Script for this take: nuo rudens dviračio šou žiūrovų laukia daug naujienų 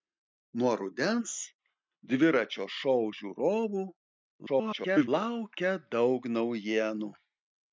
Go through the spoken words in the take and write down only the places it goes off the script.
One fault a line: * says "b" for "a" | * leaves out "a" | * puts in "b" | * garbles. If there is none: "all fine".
* garbles